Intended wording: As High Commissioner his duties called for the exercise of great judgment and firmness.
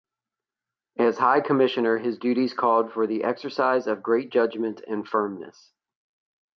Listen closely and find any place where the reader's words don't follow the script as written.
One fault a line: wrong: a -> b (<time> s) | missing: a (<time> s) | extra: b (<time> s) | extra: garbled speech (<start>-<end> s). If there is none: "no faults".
no faults